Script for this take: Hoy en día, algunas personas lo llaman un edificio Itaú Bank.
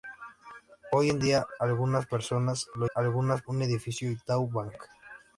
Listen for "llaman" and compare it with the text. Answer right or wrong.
wrong